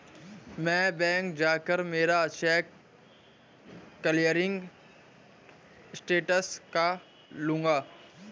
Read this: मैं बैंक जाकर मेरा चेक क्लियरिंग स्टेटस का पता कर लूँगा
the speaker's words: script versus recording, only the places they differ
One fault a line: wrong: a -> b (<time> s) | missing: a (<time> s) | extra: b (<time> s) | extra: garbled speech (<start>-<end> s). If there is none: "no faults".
missing: पता कर (6.9 s)